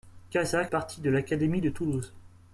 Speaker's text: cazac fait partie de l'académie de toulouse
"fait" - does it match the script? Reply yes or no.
no